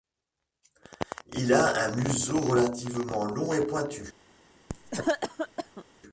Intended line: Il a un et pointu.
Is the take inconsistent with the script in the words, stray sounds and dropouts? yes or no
yes